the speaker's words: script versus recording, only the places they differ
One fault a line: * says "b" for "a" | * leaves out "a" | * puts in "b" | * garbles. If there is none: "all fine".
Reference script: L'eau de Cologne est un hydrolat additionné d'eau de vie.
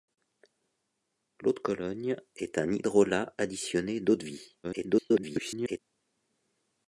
* garbles